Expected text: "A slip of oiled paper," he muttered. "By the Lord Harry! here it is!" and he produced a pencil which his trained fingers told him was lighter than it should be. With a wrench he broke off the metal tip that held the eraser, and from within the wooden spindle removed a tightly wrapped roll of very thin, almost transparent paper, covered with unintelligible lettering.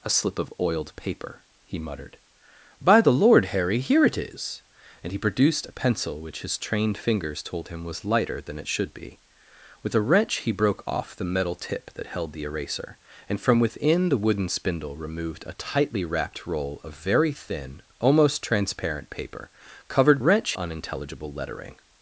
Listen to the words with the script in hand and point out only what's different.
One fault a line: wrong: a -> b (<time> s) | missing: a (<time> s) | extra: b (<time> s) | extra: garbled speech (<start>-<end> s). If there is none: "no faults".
wrong: with -> wrench (20.2 s)